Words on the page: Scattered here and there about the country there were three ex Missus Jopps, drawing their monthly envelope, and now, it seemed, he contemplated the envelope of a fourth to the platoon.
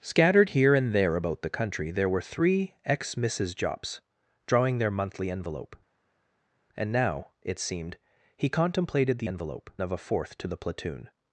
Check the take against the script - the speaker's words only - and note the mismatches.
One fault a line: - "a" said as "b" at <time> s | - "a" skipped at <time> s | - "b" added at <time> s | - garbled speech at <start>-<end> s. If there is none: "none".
none